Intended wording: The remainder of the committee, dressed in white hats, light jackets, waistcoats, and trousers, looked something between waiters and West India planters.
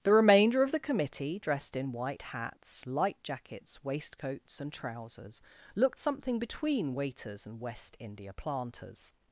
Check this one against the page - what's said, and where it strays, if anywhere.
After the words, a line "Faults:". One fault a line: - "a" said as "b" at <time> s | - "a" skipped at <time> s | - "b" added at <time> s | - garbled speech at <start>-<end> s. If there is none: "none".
The remainder of the committee, dressed in white hats, light jackets, waistcoats, and trousers, looked something between waiters and West India planters.
Faults:
none